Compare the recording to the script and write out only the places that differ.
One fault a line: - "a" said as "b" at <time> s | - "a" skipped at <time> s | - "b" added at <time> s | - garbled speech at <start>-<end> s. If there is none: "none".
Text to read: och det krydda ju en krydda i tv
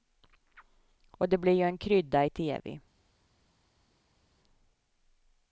- "krydda" said as "blir" at 1.4 s